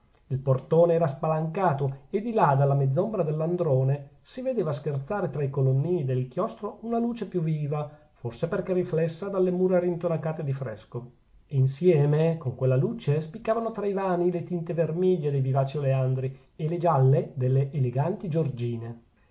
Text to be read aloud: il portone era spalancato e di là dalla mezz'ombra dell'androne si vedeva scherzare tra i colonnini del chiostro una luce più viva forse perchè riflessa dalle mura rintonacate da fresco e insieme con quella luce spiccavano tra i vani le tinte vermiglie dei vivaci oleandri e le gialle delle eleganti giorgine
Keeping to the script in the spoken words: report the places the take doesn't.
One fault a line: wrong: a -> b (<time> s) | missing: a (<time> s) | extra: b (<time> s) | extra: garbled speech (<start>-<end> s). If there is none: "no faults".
wrong: da -> di (10.4 s)